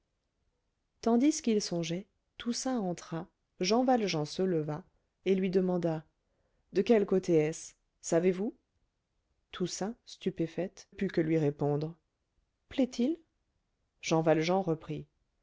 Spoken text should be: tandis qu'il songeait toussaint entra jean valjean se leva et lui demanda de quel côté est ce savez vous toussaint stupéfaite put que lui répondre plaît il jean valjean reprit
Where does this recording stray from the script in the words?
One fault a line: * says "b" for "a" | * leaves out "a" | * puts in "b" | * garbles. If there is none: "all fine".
all fine